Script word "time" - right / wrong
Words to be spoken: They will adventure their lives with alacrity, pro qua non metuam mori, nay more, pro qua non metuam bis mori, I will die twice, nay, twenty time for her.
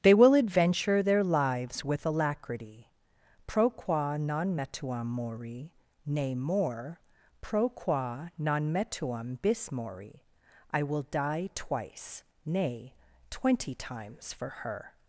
wrong